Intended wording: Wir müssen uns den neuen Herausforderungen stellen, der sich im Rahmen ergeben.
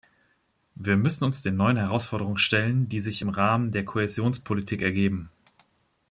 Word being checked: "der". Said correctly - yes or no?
no